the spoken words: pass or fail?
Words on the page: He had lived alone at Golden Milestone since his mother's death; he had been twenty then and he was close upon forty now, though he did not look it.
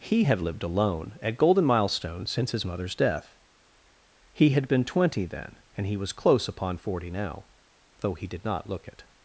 pass